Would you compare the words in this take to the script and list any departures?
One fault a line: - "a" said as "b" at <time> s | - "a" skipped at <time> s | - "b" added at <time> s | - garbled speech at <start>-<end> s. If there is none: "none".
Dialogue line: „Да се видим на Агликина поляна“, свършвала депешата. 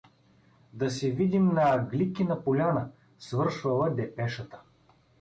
none